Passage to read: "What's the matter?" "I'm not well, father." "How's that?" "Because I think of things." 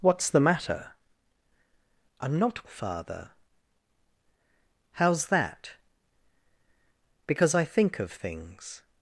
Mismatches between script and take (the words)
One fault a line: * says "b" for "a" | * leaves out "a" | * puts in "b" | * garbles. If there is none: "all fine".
* leaves out "well"